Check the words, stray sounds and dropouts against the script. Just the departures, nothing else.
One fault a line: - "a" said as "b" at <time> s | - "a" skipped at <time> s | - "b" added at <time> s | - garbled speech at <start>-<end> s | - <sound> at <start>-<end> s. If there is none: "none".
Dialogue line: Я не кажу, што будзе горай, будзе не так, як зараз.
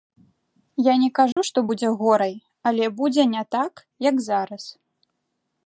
- dropout at 1.3-1.4 s
- "але" added at 2.7 s